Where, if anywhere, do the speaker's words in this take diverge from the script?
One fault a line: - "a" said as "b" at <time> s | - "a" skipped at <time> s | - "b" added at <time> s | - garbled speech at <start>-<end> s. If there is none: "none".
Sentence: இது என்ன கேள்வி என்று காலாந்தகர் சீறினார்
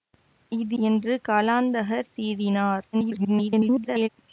- "என்ன கேள்வி" skipped at 0.8 s
- garbled speech at 2.9-4.1 s